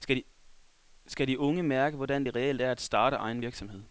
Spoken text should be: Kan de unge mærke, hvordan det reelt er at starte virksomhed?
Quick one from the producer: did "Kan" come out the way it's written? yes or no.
no